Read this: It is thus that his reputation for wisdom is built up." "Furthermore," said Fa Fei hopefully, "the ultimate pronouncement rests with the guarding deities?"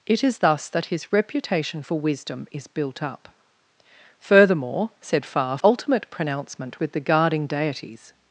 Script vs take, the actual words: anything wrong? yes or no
yes